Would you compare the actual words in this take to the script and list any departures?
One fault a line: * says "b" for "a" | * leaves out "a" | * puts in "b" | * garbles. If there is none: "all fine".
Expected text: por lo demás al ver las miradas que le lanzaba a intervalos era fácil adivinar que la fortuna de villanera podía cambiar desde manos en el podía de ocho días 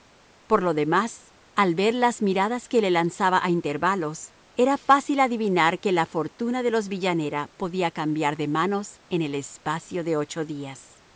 * puts in "los"
* says "de" for "desde"
* says "espacio" for "podía"